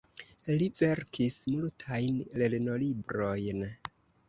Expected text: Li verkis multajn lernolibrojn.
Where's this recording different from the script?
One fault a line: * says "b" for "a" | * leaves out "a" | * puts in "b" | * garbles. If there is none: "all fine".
all fine